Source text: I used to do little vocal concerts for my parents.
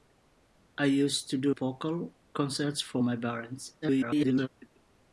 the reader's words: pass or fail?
fail